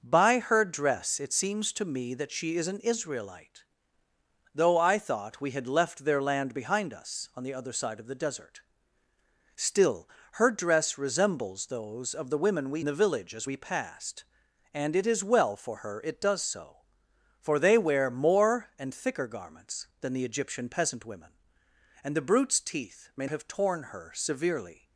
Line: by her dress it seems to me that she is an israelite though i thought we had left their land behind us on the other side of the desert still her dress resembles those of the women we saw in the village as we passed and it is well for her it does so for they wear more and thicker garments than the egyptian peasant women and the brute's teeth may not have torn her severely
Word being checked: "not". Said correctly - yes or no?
no